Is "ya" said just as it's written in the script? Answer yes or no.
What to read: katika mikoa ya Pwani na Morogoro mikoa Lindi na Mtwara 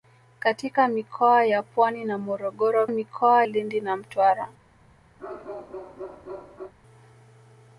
yes